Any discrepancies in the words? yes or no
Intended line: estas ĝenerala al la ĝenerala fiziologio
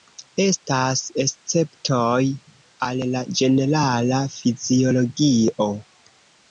yes